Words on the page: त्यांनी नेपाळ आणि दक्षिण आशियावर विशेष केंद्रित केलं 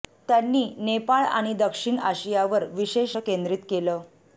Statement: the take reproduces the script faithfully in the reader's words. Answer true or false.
true